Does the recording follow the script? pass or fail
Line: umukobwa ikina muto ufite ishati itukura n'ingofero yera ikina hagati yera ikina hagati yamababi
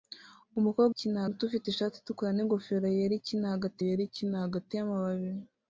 pass